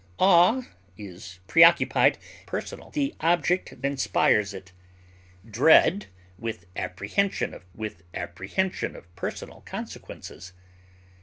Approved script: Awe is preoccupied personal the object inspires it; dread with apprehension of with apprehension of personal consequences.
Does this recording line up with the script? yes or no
yes